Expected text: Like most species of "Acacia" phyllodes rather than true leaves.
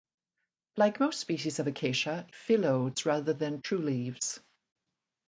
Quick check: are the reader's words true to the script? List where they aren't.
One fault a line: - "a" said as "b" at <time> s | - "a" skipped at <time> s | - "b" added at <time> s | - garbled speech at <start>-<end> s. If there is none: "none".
none